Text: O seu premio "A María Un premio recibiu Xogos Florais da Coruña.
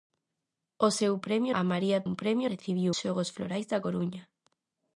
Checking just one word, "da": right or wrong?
right